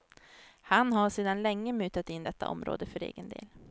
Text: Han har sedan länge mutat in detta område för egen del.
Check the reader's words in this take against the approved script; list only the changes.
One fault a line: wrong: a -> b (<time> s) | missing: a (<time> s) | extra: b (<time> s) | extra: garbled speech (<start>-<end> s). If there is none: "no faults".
no faults